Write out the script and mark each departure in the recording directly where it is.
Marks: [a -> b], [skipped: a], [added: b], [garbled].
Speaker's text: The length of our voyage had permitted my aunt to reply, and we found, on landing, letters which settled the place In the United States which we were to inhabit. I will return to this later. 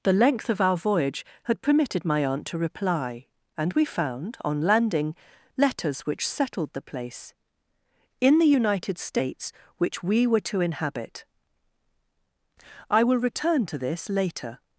The length of our voyage had permitted my aunt to reply, and we found, on landing, letters which settled the place In the United States which we were to inhabit. I will return to this later.